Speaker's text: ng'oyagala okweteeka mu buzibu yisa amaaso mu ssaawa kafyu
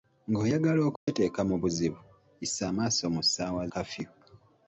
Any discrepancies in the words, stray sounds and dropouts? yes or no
yes